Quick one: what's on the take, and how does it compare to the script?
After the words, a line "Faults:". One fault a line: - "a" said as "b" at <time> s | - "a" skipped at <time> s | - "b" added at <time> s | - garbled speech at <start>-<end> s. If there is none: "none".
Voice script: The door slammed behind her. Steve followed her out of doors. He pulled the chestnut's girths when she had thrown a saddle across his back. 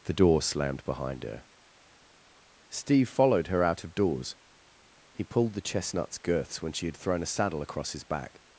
The door slammed behind her. Steve followed her out of doors. He pulled the chestnut's girths when she had thrown a saddle across his back.
Faults:
none